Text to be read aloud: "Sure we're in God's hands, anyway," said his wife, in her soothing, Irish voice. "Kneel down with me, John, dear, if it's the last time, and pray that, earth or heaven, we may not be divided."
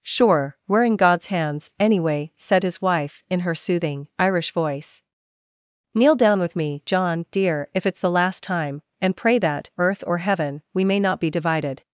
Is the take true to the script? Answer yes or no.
yes